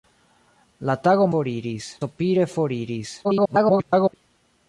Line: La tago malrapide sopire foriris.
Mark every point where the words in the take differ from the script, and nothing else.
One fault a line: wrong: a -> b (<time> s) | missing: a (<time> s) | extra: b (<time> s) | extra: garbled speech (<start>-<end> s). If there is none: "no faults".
wrong: malrapide -> foriris (1.3 s)
extra: garbled speech (3.2-4.1 s)